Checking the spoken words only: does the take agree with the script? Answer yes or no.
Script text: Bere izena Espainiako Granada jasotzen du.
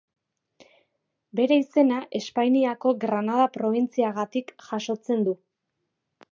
no